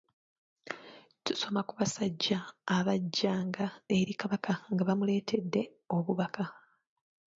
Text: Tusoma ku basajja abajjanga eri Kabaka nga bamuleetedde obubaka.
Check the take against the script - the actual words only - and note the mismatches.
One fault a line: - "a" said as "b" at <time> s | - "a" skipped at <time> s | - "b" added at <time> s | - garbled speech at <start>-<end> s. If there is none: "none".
none